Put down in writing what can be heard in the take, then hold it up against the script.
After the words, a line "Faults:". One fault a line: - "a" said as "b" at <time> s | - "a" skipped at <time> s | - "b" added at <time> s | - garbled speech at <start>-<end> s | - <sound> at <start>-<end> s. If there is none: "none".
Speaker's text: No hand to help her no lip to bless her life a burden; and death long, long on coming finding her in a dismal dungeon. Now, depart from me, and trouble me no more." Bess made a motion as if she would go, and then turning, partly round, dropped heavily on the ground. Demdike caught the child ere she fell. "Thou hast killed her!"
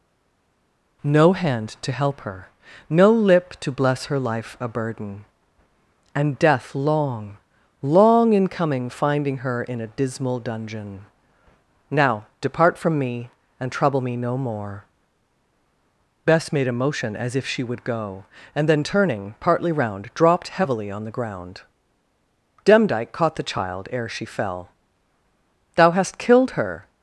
No hand to help her no lip to bless her life a burden; and death long, long in coming finding her in a dismal dungeon. Now, depart from me, and trouble me no more." Bess made a motion as if she would go, and then turning, partly round, dropped heavily on the ground. Demdike caught the child ere she fell. "Thou hast killed her!"
Faults:
- "on" said as "in" at 8.3 s